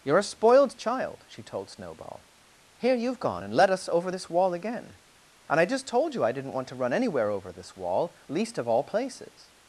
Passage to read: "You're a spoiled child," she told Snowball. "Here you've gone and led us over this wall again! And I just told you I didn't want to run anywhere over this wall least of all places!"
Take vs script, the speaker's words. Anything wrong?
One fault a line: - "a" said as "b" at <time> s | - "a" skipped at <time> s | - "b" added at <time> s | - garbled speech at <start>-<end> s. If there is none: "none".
none